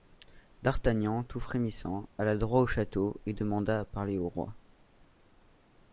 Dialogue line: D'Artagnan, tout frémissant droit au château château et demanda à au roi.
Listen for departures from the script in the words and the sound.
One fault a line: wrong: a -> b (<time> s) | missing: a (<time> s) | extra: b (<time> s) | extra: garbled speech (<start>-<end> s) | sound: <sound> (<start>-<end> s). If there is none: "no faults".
extra: alla (2.2 s)
missing: château (3.2 s)
extra: parler (3.9 s)